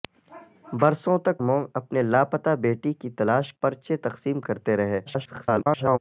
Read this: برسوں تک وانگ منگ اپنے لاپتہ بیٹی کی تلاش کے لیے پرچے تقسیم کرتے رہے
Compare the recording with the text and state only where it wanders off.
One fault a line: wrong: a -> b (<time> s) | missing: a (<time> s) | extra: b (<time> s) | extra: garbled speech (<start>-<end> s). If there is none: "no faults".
missing: وانگ (1.4 s)
missing: کے لیے (3.5 s)
extra: garbled speech (5.1-6.0 s)